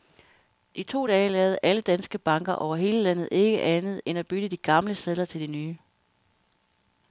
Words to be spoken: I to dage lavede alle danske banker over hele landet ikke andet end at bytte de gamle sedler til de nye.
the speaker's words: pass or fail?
pass